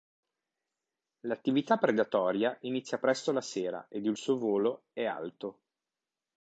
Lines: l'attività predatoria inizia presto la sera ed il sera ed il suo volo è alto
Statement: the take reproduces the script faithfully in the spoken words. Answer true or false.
false